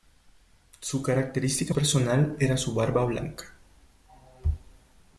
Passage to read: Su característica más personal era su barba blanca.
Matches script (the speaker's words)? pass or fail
fail